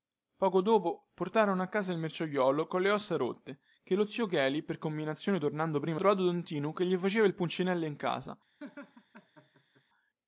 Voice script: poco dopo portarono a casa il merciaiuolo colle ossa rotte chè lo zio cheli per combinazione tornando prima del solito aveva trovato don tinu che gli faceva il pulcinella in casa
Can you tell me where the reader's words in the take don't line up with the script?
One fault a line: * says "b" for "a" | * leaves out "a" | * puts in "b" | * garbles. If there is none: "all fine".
* leaves out "del solito aveva"